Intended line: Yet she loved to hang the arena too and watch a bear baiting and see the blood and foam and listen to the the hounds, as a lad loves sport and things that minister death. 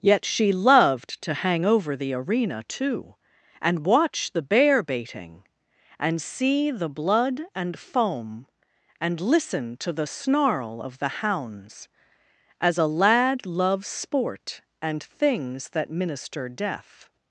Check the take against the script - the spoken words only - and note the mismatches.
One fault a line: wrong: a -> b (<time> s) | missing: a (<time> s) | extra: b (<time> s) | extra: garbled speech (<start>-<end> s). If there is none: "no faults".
extra: over (1.6 s)
wrong: a -> the (4.3 s)
extra: snarl of (10.1 s)